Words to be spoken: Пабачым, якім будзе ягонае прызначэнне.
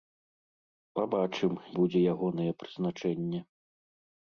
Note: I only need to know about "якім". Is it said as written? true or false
false